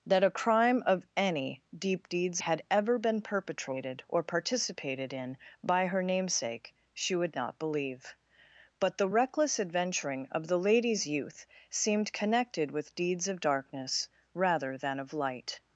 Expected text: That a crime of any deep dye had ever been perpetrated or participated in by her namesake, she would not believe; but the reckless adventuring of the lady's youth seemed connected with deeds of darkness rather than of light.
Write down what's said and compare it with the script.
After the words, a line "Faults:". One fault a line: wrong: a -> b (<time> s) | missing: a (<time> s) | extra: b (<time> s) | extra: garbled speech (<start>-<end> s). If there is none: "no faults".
That a crime of any deep deeds had ever been perpetrated or participated in by her namesake, she would not believe; but the reckless adventuring of the lady's youth seemed connected with deeds of darkness rather than of light.
Faults:
wrong: dye -> deeds (2.1 s)